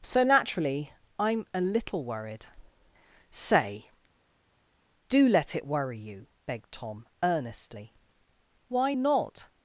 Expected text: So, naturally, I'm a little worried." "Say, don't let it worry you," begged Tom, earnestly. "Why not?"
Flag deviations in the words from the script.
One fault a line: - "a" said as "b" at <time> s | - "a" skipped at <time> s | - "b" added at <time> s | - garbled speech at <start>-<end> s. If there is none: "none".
- "don't" said as "do" at 5.1 s